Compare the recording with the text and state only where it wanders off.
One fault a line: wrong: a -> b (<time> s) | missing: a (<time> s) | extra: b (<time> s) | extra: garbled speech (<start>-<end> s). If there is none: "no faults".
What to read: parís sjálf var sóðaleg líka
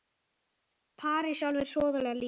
no faults